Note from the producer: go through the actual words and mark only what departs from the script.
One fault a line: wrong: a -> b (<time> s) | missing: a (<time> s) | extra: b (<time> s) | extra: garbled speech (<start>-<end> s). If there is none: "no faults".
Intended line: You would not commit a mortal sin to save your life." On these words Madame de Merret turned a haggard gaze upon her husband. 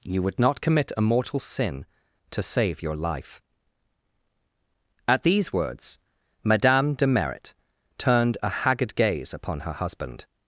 wrong: On -> At (5.1 s)